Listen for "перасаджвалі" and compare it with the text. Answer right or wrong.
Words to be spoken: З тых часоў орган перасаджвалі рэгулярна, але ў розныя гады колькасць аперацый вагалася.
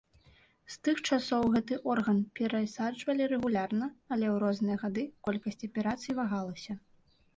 right